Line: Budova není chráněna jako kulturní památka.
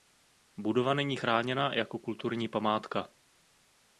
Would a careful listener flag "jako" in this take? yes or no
no